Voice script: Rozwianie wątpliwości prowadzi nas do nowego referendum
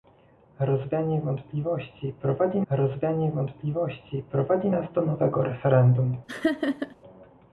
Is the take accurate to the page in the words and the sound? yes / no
no